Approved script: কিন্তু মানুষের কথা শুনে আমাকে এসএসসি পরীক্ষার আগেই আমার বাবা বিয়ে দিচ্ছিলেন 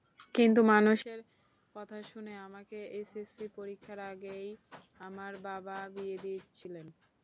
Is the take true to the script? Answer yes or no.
yes